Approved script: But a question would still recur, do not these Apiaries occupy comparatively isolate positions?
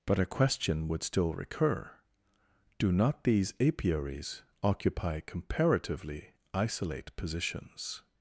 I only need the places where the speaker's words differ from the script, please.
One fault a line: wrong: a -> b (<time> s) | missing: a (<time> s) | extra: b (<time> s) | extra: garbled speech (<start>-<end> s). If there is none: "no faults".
no faults